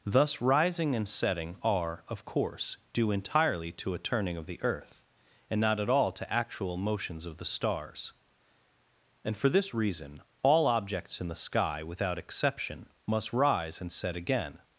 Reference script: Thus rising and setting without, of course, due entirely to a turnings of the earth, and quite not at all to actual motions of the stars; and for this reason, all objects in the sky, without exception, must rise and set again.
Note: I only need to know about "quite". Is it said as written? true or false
false